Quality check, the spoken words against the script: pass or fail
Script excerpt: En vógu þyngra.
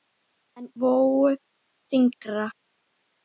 pass